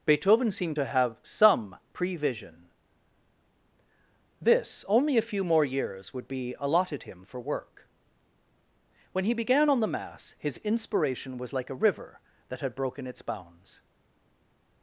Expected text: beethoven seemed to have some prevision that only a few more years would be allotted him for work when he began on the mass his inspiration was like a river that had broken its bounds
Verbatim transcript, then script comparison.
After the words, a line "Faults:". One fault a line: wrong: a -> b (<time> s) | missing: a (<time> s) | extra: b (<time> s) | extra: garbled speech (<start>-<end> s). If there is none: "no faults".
beethoven seemed to have some prevision this only a few more years would be allotted him for work when he began on the mass his inspiration was like a river that had broken its bounds
Faults:
wrong: that -> this (4.4 s)